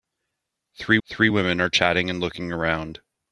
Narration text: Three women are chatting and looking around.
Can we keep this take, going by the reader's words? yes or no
no